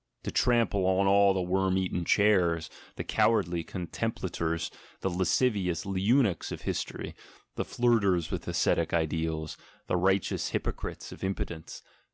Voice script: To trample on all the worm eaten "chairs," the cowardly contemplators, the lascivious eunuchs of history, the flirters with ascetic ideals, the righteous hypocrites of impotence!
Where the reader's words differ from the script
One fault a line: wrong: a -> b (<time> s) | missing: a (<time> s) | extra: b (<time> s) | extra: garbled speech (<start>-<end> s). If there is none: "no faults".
no faults